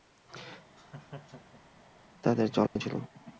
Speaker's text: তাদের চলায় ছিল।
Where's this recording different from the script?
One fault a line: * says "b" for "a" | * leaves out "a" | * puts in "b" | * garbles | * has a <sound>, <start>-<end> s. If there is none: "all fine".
* has a laugh, 0.8-1.9 s
* has a dropout, 2.7-2.8 s